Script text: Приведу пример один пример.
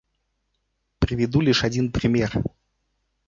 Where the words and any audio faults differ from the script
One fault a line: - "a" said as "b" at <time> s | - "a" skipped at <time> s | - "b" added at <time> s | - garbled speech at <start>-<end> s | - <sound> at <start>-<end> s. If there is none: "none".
- "пример" said as "лишь" at 1.4 s